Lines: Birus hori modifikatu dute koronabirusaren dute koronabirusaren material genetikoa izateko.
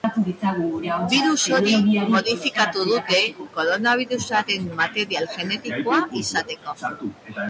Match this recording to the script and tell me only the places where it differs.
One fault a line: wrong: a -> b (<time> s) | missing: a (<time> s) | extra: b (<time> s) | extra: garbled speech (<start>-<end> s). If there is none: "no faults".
missing: dute koronabirusaren (4.7 s)